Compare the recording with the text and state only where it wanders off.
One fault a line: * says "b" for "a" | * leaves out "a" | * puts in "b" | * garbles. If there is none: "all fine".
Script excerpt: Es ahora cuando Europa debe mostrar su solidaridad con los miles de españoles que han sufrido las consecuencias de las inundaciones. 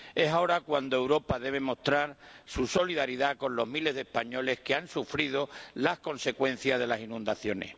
all fine